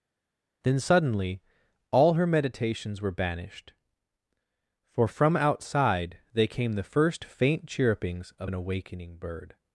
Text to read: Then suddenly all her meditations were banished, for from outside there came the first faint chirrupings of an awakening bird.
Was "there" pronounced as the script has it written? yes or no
no